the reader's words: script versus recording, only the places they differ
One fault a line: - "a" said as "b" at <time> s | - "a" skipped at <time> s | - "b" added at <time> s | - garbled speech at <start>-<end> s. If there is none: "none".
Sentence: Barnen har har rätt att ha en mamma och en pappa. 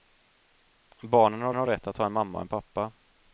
none